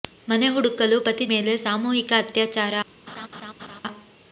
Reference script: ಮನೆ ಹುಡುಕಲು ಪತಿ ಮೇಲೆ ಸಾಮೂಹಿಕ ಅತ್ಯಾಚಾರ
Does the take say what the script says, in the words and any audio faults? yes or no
no